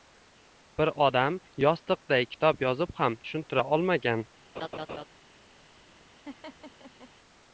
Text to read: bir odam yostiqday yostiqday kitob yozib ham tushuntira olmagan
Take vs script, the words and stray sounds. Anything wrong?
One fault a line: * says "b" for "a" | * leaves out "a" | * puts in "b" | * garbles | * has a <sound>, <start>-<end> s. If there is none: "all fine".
* leaves out "yostiqday"
* has a laugh, 4.6-5.1 s
* has a laugh, 6.2-7.1 s